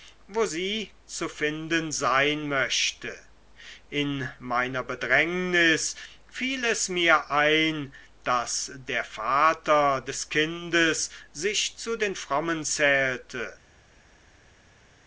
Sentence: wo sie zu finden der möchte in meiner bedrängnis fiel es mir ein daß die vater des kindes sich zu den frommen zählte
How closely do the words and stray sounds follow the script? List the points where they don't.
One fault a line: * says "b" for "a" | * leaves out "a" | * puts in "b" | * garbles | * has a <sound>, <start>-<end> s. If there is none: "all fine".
* says "sein" for "der"
* says "der" for "die"